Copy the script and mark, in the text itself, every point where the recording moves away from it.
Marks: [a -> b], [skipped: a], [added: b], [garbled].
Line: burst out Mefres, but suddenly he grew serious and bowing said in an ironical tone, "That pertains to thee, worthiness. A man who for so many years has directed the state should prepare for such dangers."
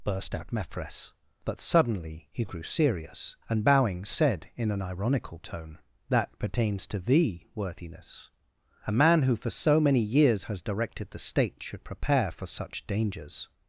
burst out Mefres, but suddenly he grew serious and bowing said in an ironical tone, "That pertains to thee, worthiness. A man who for so many years has directed the state should prepare for such dangers."